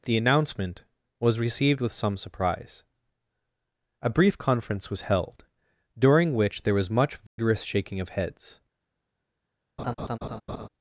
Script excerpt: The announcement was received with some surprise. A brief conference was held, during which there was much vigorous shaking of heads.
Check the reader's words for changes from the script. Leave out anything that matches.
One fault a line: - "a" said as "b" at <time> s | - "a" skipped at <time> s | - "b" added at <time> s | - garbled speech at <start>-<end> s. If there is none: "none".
none